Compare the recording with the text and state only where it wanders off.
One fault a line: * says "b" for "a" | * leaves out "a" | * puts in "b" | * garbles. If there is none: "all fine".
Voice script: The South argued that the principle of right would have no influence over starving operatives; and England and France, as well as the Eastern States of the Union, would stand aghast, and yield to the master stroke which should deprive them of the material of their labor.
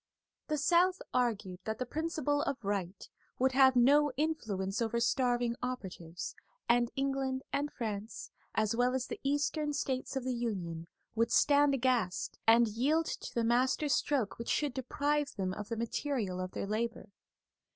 all fine